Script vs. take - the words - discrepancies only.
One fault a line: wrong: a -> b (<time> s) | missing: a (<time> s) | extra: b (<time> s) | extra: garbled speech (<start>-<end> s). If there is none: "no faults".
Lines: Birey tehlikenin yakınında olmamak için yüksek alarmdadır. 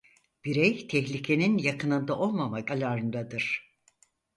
missing: için yüksek (2.7 s)